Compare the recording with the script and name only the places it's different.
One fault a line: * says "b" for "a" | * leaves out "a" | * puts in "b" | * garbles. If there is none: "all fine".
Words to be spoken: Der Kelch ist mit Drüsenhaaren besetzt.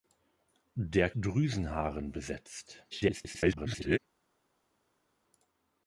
* leaves out "Kelch ist mit"
* garbles